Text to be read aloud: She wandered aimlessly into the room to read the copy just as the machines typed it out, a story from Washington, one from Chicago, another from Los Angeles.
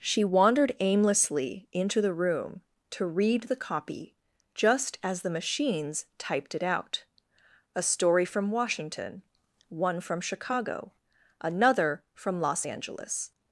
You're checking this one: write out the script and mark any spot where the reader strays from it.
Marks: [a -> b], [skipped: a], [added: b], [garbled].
She wandered aimlessly into the room to read the copy just as the machines typed it out, a story from Washington, one from Chicago, another from Los Angeles.